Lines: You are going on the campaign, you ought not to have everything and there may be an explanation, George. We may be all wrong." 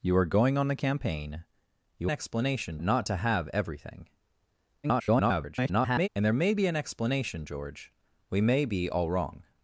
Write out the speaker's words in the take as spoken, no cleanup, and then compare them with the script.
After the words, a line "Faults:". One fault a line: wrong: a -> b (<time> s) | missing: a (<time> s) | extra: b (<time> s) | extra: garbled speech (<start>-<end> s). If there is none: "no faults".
You are going on the campaign, you explanation not to have everything [garbled] and there may be an explanation, George. We may be all wrong."
Faults:
wrong: ought -> explanation (2.1 s)
extra: garbled speech (4.8-6.1 s)